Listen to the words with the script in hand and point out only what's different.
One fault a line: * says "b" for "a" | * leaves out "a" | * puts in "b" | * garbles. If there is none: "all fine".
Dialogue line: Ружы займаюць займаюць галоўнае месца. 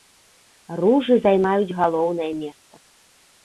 * leaves out "займаюць"